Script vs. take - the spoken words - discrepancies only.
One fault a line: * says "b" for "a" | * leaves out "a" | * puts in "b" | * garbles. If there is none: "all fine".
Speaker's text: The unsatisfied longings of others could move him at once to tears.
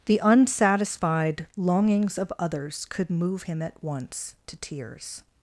all fine